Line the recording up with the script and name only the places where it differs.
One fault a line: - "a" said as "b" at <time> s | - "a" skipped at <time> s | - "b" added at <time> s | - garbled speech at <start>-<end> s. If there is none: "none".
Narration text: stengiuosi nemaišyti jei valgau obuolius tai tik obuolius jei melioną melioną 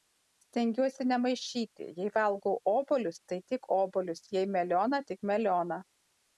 - "tik" added at 5.1 s